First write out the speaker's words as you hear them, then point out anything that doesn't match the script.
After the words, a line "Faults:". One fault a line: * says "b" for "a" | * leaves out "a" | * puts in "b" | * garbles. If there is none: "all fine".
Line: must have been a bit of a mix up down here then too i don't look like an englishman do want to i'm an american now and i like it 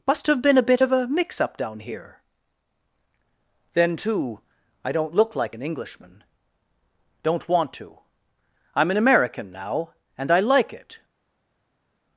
must have been a bit of a mix up down here then too i don't look like an englishman don't want to i'm an american now and i like it
Faults:
* says "don't" for "do"